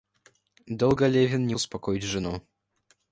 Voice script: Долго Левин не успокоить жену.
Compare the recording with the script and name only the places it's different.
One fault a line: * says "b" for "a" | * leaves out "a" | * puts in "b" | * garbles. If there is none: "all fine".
all fine